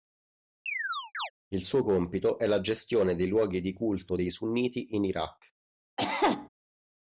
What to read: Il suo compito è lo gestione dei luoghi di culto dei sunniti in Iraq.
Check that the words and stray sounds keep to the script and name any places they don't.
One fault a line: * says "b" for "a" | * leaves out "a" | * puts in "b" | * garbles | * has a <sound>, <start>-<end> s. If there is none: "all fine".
* has a chirp, 0.7-1.3 s
* says "la" for "lo"
* has a cough, 6.0-6.5 s